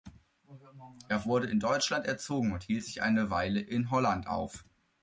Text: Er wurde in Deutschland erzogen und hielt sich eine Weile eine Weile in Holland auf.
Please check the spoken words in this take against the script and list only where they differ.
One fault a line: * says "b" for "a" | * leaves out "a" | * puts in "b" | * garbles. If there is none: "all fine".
* leaves out "eine Weile"